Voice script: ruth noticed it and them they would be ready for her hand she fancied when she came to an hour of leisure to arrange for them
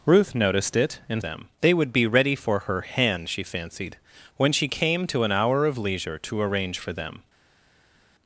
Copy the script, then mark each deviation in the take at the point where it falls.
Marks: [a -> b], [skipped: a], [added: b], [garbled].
ruth noticed it and them they would be ready for her hand she fancied when she came to an hour of leisure to arrange for them